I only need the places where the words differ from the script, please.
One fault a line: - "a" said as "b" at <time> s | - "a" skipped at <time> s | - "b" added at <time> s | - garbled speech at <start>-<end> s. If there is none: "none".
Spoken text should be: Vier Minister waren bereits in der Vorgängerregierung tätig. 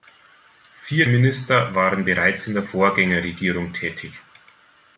none